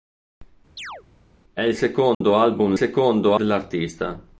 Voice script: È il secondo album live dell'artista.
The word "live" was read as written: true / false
false